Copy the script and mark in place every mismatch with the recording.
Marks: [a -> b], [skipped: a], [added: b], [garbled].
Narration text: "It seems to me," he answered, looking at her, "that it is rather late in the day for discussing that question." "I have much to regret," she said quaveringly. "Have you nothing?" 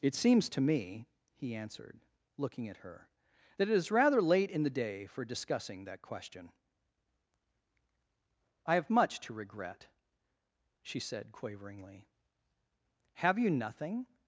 "It seems to me," he answered, looking at her, "that it is rather late in the day for discussing that question." "I have much to regret," she said quaveringly. "Have you nothing?"